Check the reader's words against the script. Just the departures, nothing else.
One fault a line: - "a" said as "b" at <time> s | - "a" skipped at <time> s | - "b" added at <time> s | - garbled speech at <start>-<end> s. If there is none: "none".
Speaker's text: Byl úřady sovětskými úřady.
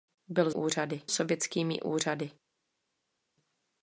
none